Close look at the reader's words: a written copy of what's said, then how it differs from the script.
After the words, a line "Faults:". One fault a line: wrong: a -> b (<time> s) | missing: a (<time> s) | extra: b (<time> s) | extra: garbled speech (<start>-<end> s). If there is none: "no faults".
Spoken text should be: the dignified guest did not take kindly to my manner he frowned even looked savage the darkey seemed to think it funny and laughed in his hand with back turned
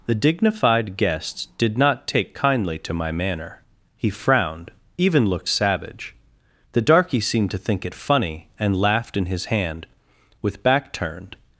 the dignified guest did not take kindly to my manner he frowned even looked savage the darkey seemed to think it funny and laughed in his hand with back turned
Faults:
no faults